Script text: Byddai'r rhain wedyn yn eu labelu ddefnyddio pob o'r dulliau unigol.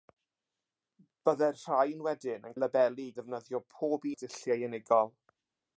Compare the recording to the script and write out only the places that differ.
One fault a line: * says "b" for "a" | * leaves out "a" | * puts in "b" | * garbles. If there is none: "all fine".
all fine